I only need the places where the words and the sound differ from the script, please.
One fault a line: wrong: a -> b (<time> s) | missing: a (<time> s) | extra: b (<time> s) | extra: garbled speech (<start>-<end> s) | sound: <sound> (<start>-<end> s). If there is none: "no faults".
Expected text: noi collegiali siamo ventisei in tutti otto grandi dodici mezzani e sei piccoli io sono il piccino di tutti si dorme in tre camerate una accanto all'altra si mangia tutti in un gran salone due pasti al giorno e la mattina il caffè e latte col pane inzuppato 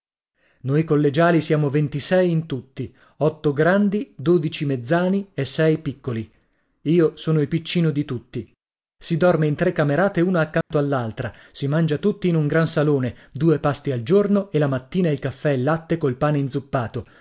sound: dropout (10.6-10.7 s)